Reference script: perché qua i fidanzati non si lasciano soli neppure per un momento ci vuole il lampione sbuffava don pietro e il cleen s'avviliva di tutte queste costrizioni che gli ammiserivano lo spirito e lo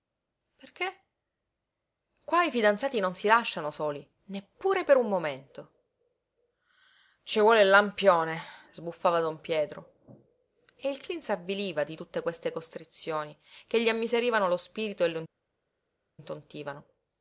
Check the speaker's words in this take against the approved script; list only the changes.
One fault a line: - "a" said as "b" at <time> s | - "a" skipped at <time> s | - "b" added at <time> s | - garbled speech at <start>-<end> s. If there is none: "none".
none